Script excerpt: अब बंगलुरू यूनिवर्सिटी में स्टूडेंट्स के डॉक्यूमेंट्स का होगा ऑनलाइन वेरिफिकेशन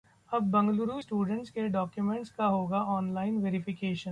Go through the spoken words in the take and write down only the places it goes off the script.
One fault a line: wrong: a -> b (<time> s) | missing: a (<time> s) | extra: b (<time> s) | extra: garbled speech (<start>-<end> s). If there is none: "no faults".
missing: यूनिवर्सिटी में (1.0 s)